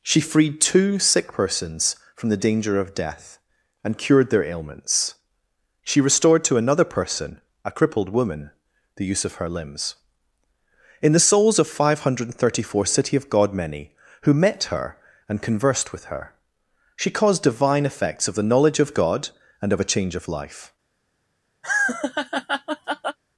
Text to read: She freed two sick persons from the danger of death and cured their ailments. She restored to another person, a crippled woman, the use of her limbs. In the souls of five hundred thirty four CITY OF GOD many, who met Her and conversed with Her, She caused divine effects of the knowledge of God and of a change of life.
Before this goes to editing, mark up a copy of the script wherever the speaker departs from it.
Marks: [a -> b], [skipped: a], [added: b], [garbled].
She freed two sick persons from the danger of death and cured their ailments. She restored to another person, a crippled woman, the use of her limbs. In the souls of five hundred thirty four CITY OF GOD many, who met Her and conversed with Her, She caused divine effects of the knowledge of God and of a change of life.